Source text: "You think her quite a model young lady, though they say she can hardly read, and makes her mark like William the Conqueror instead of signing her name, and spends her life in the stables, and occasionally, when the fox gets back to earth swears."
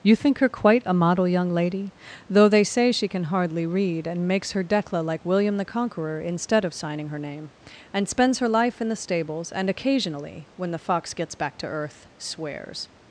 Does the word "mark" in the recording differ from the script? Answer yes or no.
yes